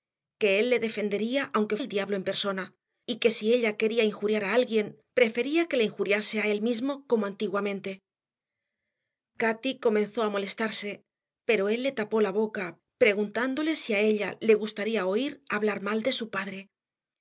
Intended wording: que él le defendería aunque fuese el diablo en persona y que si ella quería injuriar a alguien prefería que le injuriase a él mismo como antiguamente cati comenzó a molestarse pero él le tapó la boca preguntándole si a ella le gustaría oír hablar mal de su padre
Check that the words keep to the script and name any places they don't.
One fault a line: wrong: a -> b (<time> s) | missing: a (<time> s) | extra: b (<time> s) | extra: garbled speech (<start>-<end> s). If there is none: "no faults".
missing: fuese (1.8 s)